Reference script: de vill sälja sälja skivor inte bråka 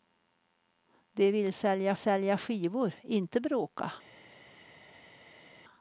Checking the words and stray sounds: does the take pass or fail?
pass